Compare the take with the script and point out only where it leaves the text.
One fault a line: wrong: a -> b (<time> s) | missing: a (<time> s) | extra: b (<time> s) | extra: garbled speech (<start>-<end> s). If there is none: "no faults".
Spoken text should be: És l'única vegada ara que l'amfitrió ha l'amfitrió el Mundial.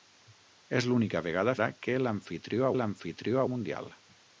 no faults